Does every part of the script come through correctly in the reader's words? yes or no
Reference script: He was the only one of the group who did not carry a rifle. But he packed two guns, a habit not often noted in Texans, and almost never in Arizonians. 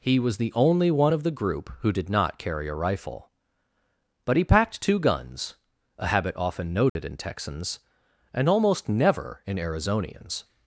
no